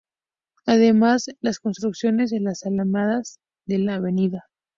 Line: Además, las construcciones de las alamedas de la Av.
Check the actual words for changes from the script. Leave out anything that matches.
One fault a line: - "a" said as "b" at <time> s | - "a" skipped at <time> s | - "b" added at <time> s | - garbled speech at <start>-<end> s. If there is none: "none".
none